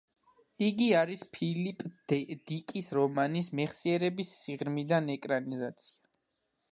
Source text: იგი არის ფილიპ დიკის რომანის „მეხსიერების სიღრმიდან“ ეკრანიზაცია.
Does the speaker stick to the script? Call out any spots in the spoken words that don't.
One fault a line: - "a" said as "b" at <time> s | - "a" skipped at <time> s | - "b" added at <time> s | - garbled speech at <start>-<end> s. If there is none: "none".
none